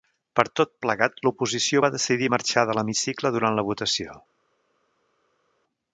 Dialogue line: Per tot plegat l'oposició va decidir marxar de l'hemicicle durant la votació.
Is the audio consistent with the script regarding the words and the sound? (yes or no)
yes